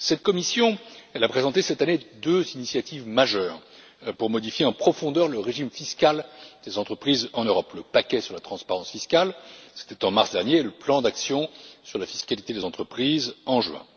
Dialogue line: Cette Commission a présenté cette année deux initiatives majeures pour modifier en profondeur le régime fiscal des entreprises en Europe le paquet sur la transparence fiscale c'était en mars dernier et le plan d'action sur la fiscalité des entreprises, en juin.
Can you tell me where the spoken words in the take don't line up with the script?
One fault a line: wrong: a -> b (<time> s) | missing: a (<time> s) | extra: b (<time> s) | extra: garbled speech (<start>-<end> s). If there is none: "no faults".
no faults